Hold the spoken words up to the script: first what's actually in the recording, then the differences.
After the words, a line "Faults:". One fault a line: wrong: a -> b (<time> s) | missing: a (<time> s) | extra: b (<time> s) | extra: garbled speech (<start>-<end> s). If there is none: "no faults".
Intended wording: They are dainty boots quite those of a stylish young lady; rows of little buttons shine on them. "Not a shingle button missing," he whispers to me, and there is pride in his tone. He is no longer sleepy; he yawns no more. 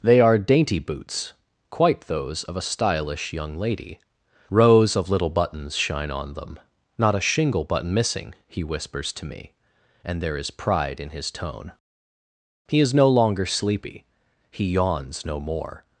They are dainty boots quite those of a stylish young lady; rows of little buttons shine on them. "Not a shingle button missing," he whispers to me, and there is pride in his tone. He is no longer sleepy; he yawns no more.
Faults:
no faults